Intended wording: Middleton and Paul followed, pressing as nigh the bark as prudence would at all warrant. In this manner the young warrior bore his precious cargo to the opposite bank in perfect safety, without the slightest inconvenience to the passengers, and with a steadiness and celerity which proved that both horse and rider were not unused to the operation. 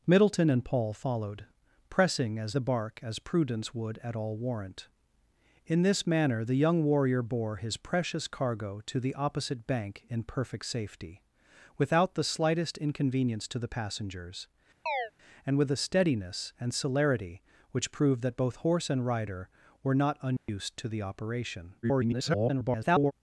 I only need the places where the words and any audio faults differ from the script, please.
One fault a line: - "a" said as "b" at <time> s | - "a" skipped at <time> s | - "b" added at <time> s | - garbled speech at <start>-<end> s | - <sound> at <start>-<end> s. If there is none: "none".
- "nigh" skipped at 2.6 s
- chirp at 14.9-15.1 s
- dropout at 20.4-20.5 s
- garbled speech at 21.8-23.1 s